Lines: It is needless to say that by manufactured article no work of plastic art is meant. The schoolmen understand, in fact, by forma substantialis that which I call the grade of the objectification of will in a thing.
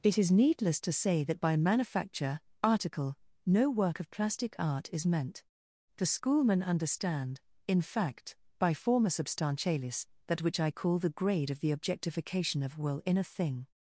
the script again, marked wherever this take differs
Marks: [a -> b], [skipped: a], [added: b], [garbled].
It is needless to say that by [manufactured -> manufacture] article no work of plastic art is meant. The schoolmen understand, in fact, by forma substantialis that which I call the grade of the objectification of will in a thing.